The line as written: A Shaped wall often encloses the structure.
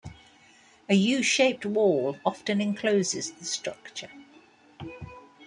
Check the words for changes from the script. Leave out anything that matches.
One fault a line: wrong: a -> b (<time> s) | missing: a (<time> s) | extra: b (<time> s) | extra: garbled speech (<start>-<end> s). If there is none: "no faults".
extra: U (0.9 s)